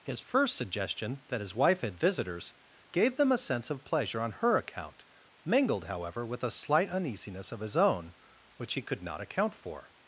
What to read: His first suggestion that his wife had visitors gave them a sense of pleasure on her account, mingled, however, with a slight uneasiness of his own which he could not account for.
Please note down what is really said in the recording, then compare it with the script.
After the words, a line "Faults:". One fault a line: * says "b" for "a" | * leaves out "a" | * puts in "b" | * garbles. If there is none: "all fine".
His first suggestion that his wife had visitors gave them a sense of pleasure on her account, mingled, however, with a slight uneasiness of his own which he could not account for.
Faults:
all fine